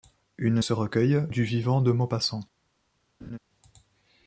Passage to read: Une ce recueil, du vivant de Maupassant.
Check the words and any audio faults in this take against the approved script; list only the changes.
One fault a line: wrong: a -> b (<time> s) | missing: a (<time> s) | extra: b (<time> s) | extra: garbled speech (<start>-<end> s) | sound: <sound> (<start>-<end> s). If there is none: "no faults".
sound: laugh (3.2-3.4 s)